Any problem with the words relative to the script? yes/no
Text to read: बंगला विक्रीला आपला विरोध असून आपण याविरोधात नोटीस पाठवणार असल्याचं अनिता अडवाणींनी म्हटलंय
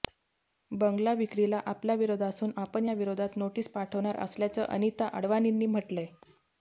no